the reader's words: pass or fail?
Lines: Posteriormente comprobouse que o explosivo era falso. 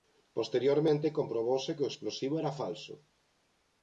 pass